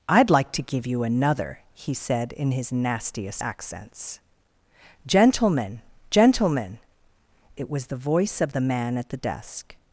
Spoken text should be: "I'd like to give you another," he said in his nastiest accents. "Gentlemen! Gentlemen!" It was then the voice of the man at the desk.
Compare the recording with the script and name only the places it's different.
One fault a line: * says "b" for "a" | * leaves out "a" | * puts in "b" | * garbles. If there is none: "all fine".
* leaves out "then"